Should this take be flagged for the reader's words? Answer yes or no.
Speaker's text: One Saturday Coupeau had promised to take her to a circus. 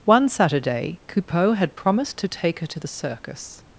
yes